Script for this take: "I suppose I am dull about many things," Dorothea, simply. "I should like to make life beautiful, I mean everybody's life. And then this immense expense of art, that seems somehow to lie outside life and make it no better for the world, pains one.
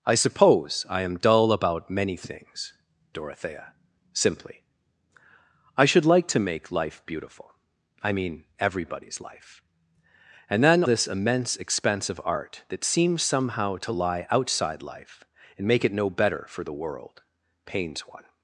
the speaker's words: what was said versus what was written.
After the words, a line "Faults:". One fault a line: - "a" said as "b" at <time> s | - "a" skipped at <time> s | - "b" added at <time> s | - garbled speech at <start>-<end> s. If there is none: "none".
"I suppose I am dull about many things," Dorothea, simply. "I should like to make life beautiful, I mean everybody's life. And then this immense expense of art, that seems somehow to lie outside life and make it no better for the world, pains one.
Faults:
none